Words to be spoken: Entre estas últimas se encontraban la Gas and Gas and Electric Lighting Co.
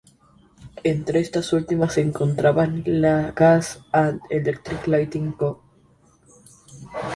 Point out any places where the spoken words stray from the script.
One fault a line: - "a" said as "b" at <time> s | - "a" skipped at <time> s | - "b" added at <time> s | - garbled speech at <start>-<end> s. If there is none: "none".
- "Gas and" skipped at 4.2 s